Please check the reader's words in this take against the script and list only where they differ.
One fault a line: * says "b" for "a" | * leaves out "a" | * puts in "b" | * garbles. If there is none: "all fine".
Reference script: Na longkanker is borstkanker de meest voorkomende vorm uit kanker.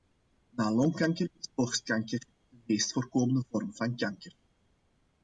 * says "van" for "uit"